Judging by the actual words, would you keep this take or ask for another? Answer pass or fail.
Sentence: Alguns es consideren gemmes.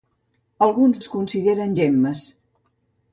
pass